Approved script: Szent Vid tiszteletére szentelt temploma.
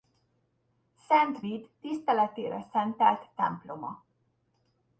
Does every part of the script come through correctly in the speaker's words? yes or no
yes